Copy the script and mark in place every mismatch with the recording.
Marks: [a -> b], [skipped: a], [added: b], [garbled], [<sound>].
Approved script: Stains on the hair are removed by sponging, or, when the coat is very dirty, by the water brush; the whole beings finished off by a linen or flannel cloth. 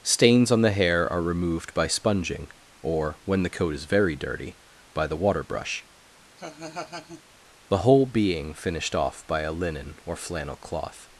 Stains on the hair are removed by sponging, or, when the coat is very dirty, by the water brush; [laugh] the whole [beings -> being] finished off by a linen or flannel cloth.